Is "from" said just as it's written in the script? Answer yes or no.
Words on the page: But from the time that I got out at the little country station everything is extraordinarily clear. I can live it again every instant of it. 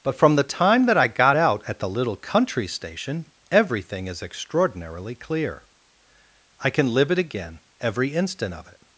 yes